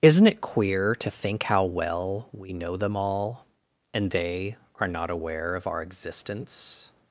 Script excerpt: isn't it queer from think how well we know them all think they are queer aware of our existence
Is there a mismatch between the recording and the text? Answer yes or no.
yes